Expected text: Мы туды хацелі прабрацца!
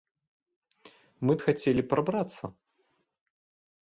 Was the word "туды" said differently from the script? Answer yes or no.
yes